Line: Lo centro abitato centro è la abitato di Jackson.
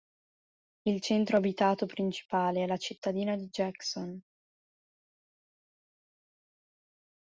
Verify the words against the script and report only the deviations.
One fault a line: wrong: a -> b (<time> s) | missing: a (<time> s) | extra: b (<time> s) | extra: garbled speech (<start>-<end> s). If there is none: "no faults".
wrong: Lo -> Il (0.9 s)
wrong: centro -> principale (1.8 s)
wrong: abitato -> cittadina (2.8 s)